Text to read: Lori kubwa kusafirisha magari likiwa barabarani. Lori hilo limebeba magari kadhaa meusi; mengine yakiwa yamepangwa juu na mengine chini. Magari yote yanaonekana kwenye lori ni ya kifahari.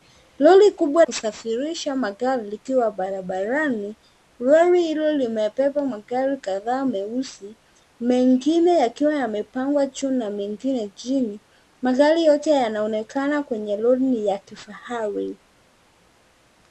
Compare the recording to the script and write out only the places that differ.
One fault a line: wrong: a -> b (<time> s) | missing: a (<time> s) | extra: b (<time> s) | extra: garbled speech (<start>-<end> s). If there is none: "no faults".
no faults